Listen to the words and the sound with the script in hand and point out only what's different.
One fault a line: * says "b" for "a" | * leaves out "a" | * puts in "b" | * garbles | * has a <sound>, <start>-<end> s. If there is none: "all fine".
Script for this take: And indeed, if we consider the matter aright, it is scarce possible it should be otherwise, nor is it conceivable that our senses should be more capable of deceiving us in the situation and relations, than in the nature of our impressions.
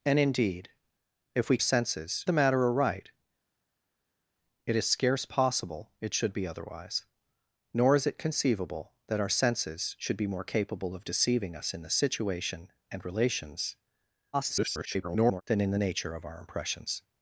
* says "senses" for "consider"
* garbles